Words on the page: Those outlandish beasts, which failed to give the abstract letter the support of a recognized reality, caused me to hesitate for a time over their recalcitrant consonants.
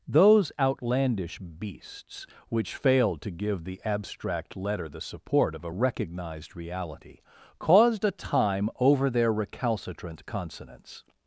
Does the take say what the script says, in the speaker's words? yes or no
no